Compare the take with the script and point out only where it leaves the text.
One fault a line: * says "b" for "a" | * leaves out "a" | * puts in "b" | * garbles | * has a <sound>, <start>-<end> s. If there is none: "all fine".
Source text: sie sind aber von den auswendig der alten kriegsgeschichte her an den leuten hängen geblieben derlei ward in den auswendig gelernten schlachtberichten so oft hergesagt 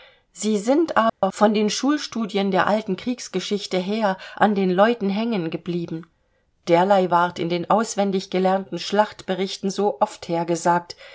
* has a dropout, 1.1-1.2 s
* says "schulstudien" for "auswendig"